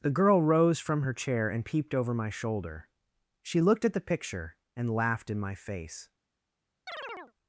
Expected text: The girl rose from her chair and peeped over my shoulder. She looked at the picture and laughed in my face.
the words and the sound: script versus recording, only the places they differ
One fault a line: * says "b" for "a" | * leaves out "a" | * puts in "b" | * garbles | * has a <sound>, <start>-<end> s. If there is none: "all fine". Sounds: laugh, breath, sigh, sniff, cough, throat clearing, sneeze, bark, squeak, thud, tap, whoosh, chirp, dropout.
* has a chirp, 6.9-7.3 s